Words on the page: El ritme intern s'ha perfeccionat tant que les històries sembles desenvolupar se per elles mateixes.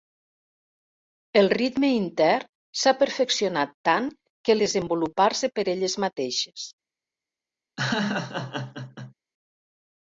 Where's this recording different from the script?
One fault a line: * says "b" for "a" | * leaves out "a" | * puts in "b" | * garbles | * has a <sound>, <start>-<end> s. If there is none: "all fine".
* leaves out "les històries sembles"
* has a laugh, 7.8-9.1 s